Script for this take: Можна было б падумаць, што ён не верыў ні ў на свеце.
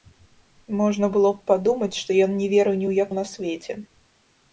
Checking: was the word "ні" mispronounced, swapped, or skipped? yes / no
no